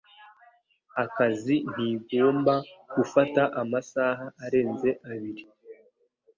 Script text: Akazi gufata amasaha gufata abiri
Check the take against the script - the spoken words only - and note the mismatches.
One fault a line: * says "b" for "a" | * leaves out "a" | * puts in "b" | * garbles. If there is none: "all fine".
* puts in "ntigomba"
* says "arenze" for "gufata"